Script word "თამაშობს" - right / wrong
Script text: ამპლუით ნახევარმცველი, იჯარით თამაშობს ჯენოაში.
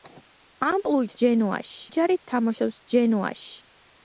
right